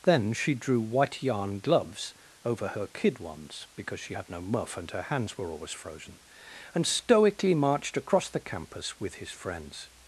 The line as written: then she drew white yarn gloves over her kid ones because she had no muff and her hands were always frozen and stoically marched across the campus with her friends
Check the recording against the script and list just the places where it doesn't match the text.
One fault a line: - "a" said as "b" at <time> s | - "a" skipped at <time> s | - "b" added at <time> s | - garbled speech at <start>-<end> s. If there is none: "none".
- "her" said as "his" at 9.1 s